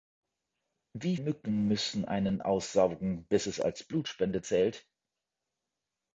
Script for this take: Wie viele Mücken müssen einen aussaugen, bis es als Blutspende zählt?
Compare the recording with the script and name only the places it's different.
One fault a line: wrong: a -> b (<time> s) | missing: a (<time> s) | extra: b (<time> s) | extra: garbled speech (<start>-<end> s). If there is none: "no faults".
missing: viele (1.1 s)